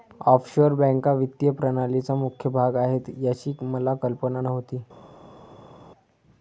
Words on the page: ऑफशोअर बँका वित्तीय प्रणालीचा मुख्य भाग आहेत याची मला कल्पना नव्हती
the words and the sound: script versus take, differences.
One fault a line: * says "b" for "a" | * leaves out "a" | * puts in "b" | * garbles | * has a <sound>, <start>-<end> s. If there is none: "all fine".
all fine